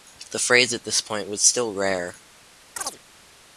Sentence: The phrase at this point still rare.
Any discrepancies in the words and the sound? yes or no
yes